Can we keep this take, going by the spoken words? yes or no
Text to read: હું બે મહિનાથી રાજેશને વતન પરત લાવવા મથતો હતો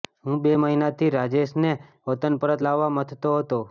yes